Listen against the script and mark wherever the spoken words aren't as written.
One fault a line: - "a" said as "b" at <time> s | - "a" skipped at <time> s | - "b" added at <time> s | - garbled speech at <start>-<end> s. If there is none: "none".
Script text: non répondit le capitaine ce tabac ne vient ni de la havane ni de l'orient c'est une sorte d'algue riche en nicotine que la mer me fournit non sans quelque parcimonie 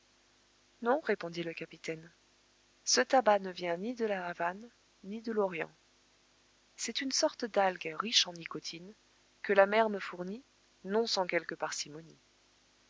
none